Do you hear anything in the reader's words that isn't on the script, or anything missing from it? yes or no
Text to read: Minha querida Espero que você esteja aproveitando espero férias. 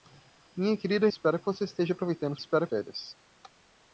no